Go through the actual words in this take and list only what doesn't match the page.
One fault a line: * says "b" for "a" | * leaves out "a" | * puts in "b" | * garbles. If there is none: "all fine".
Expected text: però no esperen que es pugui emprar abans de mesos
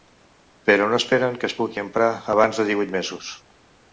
* puts in "divuit"